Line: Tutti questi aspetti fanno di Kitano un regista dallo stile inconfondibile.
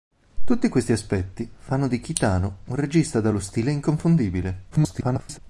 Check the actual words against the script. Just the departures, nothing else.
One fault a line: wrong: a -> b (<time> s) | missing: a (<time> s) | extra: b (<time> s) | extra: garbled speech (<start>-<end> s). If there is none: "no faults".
extra: garbled speech (4.7-5.4 s)